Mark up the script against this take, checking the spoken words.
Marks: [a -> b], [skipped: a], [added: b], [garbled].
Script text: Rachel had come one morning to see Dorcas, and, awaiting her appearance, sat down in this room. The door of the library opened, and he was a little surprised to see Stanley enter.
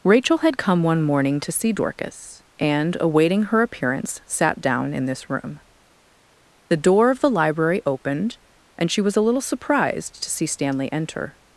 Rachel had come one morning to see Dorcas, and, awaiting her appearance, sat down in this room. The door of the library opened, and [he -> she] was a little surprised to see Stanley enter.